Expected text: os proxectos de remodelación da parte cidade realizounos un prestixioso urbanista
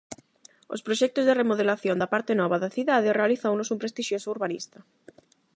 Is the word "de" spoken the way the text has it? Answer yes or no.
yes